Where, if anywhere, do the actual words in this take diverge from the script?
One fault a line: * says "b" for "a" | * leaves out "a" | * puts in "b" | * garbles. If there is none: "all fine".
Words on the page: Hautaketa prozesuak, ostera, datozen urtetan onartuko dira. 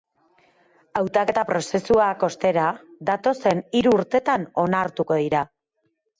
* puts in "hiru"